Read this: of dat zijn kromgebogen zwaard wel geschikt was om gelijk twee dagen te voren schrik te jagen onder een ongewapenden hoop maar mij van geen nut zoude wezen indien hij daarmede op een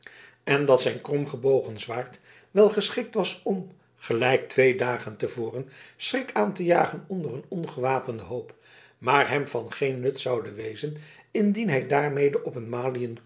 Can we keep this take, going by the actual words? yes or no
no